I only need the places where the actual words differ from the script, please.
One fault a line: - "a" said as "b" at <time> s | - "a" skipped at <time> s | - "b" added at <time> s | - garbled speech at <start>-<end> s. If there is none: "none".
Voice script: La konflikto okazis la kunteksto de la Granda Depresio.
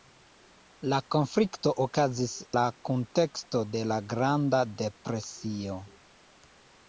none